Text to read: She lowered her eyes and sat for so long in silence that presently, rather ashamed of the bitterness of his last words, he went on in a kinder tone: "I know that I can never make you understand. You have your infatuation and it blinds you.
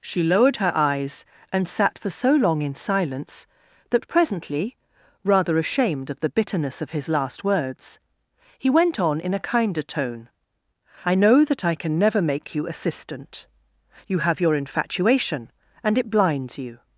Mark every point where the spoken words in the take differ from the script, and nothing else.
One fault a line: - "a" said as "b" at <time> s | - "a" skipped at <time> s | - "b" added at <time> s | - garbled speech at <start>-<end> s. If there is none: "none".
- "understand" said as "assistant" at 12.7 s